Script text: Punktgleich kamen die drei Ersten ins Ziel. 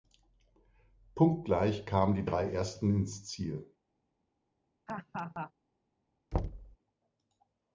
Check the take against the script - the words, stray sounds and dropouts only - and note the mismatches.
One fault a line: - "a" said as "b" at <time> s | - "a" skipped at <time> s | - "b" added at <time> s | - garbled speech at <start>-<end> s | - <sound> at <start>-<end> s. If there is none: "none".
- laugh at 4.9-5.5 s
- thud at 6.3-6.8 s